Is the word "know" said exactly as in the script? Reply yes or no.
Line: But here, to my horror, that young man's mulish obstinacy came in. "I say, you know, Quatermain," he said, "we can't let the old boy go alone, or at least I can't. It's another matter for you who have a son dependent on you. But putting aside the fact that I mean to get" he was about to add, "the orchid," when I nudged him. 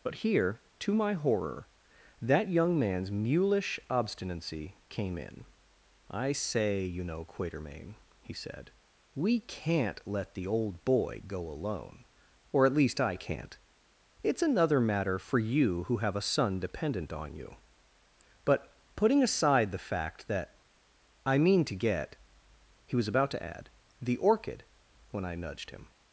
yes